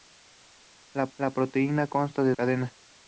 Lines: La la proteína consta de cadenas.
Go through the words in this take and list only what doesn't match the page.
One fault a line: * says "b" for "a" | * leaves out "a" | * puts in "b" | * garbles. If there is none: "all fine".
all fine